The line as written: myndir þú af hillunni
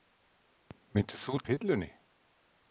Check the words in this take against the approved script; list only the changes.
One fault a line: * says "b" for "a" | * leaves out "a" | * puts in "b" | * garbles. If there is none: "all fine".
all fine